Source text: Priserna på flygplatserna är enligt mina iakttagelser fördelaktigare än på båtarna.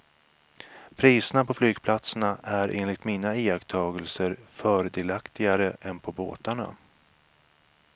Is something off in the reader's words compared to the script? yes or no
no